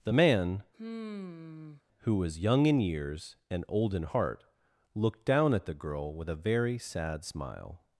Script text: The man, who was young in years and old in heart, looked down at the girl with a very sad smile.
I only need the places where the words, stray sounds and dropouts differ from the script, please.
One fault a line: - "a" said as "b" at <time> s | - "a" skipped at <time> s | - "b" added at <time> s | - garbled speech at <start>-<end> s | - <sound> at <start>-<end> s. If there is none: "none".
- sigh at 0.7-1.8 s